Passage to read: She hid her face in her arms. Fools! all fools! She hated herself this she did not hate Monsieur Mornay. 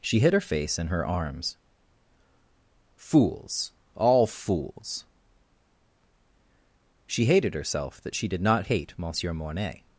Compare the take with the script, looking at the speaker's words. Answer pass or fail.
fail